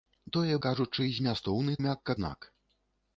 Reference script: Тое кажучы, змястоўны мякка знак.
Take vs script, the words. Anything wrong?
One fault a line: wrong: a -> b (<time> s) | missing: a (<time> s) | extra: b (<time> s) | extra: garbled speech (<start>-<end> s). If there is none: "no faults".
no faults